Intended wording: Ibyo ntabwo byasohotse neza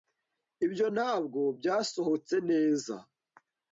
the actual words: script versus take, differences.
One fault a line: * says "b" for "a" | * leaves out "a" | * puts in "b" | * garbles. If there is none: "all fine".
all fine